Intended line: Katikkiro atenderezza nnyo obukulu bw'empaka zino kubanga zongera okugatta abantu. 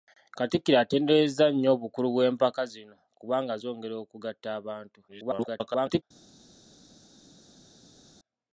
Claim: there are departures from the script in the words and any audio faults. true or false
true